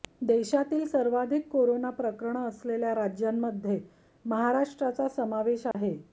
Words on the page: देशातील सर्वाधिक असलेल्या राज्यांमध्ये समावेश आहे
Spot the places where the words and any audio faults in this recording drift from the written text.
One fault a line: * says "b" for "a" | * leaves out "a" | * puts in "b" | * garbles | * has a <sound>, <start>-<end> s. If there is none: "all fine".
* puts in "कोरोना प्रकरणं"
* puts in "महाराष्ट्राचा"
* has a dropout, 5.7-5.7 s